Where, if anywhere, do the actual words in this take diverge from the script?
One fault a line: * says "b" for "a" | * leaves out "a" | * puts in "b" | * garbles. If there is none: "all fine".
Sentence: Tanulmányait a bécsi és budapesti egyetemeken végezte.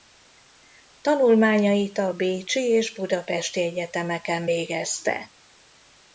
all fine